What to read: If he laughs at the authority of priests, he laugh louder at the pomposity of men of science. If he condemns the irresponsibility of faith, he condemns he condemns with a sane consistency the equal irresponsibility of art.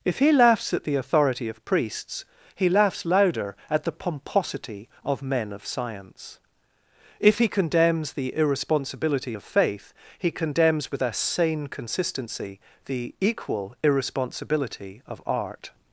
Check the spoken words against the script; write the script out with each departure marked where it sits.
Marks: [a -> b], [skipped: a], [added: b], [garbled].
If he laughs at the authority of priests, he [laugh -> laughs] louder at the pomposity of men of science. If he condemns the irresponsibility of faith, he condemns [skipped: he condemns] with a sane consistency the equal irresponsibility of art.